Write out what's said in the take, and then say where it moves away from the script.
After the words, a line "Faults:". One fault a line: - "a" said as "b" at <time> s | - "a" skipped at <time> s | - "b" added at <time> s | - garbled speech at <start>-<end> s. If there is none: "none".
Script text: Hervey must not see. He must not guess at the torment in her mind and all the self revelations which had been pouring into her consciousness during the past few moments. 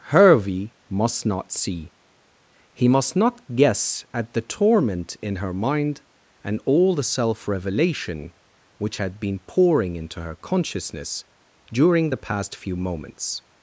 Hervey must not see. He must not guess at the torment in her mind and all the self revelation which had been pouring into her consciousness during the past few moments.
Faults:
- "revelations" said as "revelation" at 7.5 s